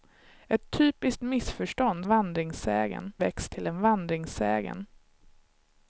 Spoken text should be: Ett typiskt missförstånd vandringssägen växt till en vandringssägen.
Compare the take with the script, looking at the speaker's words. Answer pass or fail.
pass